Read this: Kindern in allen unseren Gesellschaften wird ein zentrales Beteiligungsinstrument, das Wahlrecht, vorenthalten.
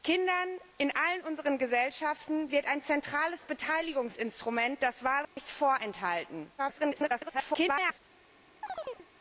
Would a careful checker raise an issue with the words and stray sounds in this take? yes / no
yes